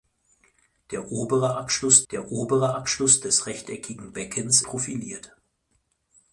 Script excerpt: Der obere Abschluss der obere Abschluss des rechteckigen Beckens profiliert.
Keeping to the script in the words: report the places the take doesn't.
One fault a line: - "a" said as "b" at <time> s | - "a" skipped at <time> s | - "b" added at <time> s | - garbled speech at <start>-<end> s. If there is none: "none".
none